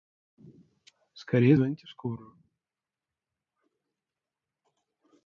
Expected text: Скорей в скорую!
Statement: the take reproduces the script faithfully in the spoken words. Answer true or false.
false